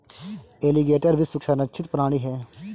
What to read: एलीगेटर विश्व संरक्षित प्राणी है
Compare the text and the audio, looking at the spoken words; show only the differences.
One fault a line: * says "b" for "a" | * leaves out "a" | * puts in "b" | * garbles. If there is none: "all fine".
all fine